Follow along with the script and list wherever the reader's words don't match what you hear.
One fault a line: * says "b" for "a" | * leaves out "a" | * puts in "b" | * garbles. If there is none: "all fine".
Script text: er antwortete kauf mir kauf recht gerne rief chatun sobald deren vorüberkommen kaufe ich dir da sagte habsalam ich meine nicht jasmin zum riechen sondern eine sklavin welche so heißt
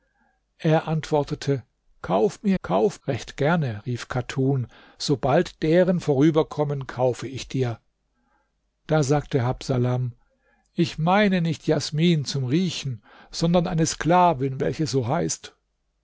all fine